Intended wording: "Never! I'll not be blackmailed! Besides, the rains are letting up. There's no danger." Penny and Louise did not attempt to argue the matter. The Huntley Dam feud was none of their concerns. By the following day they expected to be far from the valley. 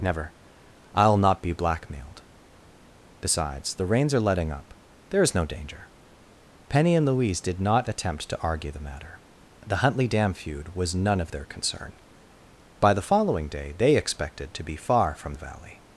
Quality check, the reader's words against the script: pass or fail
fail